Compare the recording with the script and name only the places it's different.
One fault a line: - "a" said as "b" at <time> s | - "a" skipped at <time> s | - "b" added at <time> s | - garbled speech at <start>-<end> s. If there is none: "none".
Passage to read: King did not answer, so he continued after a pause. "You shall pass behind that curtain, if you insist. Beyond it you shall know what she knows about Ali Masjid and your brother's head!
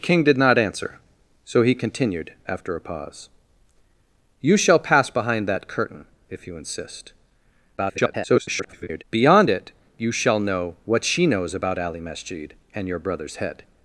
- garbled speech at 7.8-9.0 s